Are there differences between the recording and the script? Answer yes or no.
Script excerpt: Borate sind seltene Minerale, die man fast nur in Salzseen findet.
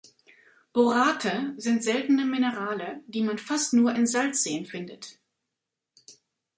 no